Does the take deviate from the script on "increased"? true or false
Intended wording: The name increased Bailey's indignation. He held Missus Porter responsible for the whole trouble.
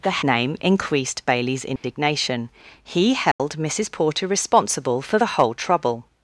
false